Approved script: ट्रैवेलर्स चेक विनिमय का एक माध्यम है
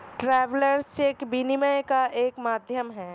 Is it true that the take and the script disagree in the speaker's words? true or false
false